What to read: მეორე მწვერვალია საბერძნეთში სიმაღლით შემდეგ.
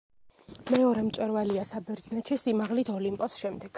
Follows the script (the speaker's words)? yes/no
no